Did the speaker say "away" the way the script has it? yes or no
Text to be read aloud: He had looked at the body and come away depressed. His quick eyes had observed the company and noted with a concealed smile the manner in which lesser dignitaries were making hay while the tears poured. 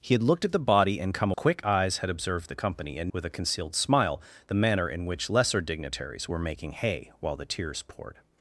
no